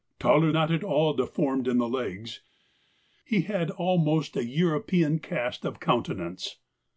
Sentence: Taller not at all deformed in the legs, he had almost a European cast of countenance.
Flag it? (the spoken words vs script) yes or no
no